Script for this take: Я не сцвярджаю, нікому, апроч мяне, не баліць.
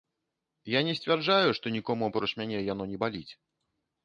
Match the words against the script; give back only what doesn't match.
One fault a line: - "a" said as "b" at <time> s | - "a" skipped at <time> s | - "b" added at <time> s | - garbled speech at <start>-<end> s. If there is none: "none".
- "што" added at 1.6 s
- "яно" added at 2.7 s